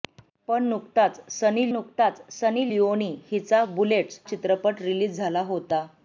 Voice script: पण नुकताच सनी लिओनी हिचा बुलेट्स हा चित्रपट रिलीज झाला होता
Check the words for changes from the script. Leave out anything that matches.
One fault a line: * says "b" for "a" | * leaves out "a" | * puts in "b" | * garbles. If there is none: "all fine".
* puts in "नुकताच सनी"
* leaves out "हा"